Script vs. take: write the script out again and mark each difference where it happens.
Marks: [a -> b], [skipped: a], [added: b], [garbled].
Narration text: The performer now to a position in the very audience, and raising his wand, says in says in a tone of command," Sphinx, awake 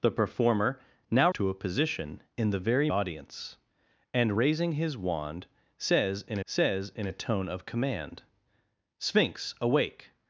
The performer now to a position in the very audience, and raising his wand, says in says in a tone of command," Sphinx, awake